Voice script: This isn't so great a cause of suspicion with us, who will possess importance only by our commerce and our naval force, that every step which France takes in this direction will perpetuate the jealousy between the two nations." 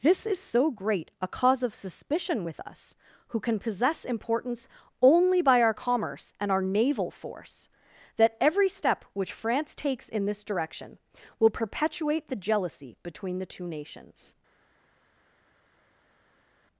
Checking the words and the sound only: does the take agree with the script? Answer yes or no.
no